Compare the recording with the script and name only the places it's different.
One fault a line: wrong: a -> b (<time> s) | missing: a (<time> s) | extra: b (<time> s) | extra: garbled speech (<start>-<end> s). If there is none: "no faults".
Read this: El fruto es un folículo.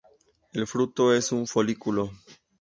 no faults